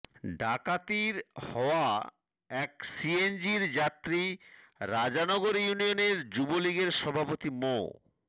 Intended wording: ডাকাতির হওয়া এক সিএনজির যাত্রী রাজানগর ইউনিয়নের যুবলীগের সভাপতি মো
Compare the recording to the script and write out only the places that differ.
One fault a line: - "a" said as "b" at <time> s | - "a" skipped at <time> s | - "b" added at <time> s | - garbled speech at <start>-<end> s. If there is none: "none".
none